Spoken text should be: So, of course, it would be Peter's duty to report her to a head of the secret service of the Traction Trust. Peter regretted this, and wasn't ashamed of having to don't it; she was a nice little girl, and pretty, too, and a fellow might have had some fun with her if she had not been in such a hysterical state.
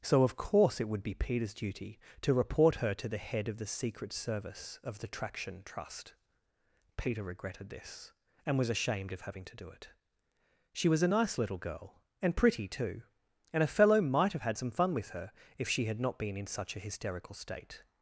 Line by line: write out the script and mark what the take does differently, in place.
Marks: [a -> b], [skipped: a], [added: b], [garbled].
So, of course, it would be Peter's duty to report her to [a -> the] head of the secret service of the Traction Trust. Peter regretted this, and [wasn't -> was] ashamed of having to [don't -> do] it; she was a nice little girl, and pretty, too, and a fellow might have had some fun with her if she had not been in such a hysterical state.